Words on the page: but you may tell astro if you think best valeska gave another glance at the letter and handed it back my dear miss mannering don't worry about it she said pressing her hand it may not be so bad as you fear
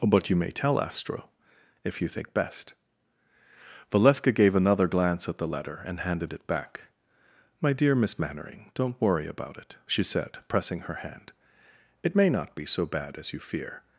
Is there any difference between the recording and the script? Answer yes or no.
no